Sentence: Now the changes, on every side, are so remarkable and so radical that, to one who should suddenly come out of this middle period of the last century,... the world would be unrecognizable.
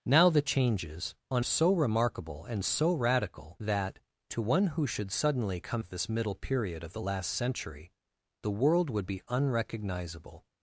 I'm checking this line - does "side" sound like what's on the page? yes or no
no